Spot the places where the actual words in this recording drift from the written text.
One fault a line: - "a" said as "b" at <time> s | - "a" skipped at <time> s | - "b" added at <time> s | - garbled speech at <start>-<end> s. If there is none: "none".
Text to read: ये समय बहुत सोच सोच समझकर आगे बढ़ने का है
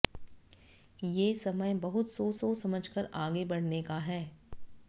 none